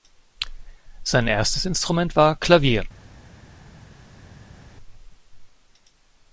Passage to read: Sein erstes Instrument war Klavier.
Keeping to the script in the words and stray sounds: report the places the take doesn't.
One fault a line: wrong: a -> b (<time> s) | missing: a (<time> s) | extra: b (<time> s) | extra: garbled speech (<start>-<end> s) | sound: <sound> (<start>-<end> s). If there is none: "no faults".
no faults